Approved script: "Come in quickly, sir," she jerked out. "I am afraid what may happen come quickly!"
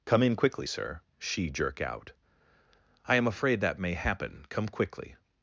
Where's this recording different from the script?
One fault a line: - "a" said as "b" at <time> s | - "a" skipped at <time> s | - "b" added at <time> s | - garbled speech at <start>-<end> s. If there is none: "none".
- "jerked" said as "jerk" at 1.5 s
- "what" said as "that" at 3.6 s